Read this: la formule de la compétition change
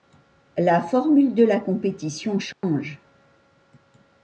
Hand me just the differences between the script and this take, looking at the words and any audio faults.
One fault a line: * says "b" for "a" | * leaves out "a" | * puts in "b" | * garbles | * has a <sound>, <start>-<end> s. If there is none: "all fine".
* has a dropout, 2.5-2.6 s